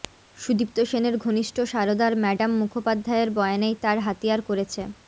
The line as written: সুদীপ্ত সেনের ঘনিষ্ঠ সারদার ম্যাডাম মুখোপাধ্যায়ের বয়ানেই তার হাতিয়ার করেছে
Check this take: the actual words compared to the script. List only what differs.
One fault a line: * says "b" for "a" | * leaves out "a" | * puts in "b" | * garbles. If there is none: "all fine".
all fine